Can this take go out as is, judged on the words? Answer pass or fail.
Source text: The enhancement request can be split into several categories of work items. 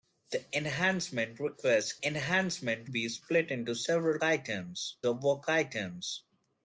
fail